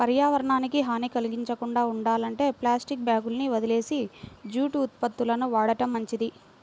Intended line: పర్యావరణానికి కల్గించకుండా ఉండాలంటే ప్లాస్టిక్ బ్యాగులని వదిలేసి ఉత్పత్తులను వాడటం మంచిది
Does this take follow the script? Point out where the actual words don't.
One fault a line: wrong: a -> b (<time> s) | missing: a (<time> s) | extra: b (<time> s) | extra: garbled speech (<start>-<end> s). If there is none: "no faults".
extra: హాని (0.8 s)
extra: జూటు (4.5 s)